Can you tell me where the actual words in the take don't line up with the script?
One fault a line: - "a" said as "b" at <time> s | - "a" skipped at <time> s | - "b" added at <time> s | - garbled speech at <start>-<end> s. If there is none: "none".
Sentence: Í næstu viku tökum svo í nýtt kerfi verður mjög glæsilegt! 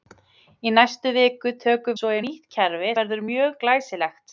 none